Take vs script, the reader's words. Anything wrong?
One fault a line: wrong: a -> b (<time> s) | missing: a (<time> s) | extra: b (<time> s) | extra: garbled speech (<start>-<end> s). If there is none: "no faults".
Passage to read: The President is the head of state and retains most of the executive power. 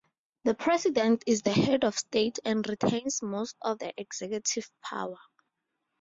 no faults